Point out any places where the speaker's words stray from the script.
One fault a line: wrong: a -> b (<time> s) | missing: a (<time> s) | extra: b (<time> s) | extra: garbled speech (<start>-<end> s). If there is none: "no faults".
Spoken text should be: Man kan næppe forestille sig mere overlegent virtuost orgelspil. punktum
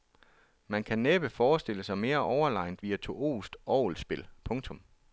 no faults